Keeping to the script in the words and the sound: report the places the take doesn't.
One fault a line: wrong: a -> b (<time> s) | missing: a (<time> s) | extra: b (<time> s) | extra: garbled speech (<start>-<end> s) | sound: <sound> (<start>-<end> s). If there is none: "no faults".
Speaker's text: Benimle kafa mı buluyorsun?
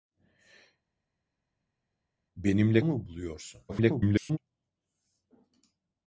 missing: kafa (2.8 s)
extra: garbled speech (3.7-4.4 s)